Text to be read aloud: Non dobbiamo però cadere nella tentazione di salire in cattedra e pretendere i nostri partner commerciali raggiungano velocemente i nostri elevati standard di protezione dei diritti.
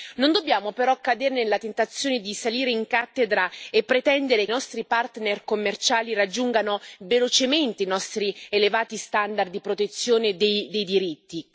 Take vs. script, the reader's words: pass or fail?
pass